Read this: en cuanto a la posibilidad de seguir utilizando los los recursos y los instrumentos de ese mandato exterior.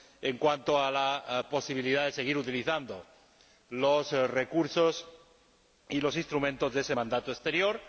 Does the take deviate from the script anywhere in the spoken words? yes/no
yes